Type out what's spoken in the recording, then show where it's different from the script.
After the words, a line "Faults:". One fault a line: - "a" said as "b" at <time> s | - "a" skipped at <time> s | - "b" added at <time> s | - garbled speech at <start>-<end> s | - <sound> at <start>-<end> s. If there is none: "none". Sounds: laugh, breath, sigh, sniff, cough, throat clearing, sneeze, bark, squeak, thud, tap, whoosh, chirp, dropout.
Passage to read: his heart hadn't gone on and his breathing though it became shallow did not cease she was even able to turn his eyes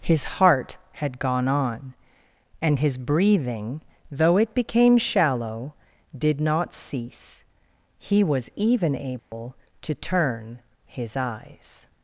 his heart had gone on and his breathing though it became shallow did not cease he was even able to turn his eyes
Faults:
- "hadn't" said as "had" at 0.9 s
- "she" said as "he" at 8.0 s
- dropout at 9.2-9.3 s